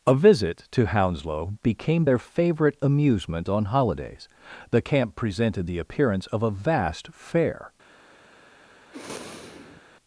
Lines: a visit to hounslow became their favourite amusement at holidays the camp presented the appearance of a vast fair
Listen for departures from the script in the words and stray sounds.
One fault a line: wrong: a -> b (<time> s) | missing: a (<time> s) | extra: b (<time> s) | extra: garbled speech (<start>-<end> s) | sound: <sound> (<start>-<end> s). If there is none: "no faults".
wrong: at -> on (3.5 s)
sound: sniff (8.9-9.8 s)